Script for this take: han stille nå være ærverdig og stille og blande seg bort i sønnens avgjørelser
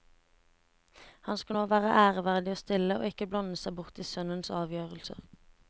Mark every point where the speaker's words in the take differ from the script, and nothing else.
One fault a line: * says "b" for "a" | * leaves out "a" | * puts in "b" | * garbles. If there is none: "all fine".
* says "skal" for "stille"
* puts in "ikke"